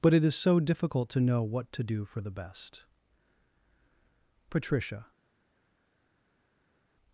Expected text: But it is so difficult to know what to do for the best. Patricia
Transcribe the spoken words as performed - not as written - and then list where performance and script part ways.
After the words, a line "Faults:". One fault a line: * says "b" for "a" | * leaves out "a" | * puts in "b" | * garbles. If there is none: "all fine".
But it is so difficult to know what to do for the best. Patricia
Faults:
all fine